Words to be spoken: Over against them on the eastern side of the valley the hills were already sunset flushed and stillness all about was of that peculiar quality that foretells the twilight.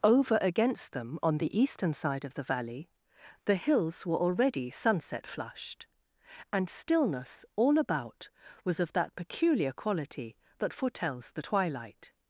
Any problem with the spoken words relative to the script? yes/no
no